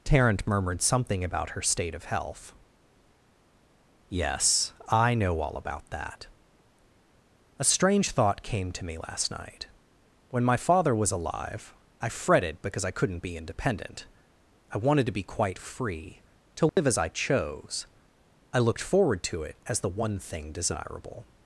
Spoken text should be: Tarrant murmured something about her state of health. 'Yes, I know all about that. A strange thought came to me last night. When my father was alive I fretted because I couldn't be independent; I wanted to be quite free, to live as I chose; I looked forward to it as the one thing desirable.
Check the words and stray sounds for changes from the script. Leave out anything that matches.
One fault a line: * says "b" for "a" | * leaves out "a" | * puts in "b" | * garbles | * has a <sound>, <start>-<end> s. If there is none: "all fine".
* has a dropout, 16.7-16.8 s